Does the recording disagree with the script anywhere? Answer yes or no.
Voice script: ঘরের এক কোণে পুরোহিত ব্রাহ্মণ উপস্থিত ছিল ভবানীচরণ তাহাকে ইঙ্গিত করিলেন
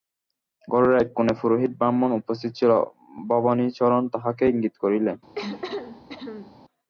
no